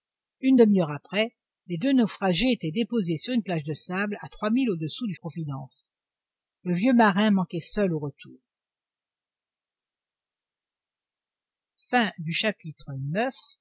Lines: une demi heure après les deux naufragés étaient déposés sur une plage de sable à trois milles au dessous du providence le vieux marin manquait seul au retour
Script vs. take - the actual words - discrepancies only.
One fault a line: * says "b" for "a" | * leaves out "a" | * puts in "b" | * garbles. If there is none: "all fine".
all fine